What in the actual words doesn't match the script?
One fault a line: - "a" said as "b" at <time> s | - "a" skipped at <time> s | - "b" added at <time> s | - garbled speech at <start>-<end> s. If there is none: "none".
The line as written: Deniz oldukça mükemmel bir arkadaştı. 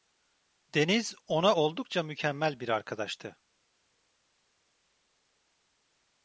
- "ona" added at 1.3 s